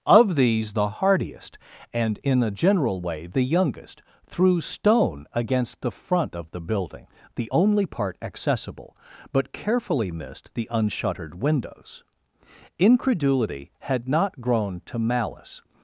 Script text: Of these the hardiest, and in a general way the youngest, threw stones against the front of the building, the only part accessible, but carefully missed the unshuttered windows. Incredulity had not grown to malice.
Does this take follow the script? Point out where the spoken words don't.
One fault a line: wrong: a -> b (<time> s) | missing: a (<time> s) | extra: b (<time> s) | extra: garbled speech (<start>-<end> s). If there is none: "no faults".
wrong: stones -> stone (4.6 s)